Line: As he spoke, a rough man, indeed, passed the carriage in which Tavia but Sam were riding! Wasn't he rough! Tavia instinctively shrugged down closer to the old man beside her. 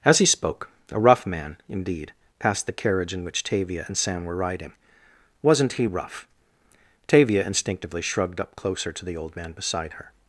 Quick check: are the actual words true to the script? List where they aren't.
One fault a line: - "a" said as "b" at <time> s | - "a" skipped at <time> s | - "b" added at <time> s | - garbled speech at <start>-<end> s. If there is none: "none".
- "but" said as "and" at 3.9 s
- "down" said as "up" at 8.4 s